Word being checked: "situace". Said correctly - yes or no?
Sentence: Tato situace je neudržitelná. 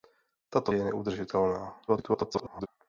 no